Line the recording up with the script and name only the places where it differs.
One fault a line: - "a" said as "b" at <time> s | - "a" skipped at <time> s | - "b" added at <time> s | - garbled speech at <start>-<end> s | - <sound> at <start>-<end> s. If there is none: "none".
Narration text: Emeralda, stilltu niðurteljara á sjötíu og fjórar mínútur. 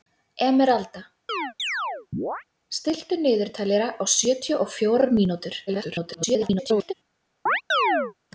- chirp at 1.3-2.4 s
- garbled speech at 5.7-6.9 s
- chirp at 7.5-8.1 s